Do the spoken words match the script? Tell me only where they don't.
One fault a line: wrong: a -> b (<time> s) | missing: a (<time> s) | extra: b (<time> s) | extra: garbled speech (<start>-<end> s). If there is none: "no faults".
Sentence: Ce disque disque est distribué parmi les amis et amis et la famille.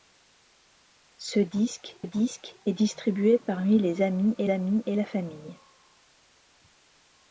no faults